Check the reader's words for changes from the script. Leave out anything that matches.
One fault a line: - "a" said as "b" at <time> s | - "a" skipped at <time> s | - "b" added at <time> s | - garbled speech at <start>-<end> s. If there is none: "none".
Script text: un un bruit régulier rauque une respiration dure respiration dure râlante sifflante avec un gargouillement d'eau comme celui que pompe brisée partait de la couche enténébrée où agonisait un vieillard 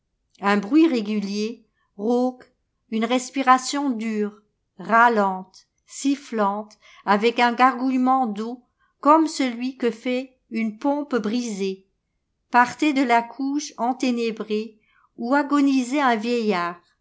- "un" skipped at 0.6 s
- "respiration dure" skipped at 4.3 s
- "fait une" added at 9.9 s